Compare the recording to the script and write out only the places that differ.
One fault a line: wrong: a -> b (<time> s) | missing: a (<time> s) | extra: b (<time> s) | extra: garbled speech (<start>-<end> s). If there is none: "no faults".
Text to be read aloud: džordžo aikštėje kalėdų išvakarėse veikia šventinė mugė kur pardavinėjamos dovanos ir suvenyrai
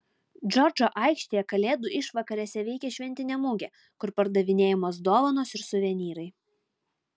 no faults